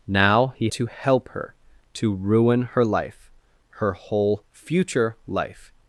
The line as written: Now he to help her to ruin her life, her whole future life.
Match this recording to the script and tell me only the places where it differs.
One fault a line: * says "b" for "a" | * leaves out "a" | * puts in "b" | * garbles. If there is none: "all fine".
all fine